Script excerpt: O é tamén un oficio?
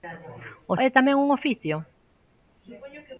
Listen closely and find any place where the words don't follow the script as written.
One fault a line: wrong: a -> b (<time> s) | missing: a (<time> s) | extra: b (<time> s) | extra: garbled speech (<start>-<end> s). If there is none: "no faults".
no faults